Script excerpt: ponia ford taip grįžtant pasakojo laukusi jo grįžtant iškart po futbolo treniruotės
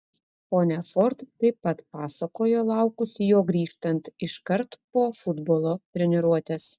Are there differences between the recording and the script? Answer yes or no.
yes